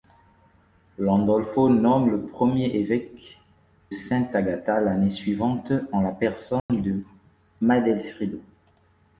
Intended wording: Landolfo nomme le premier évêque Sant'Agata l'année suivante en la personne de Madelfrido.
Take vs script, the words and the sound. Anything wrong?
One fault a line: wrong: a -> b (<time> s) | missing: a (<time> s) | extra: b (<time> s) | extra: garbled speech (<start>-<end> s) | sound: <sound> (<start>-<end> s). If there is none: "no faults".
sound: dropout (6.6-6.7 s)